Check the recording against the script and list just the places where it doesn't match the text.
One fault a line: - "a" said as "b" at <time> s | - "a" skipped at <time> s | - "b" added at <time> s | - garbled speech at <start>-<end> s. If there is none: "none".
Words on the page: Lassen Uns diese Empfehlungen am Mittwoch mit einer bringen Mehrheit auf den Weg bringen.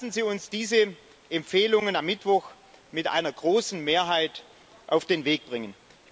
- "Sie" added at 0.1 s
- "bringen" said as "großen" at 3.3 s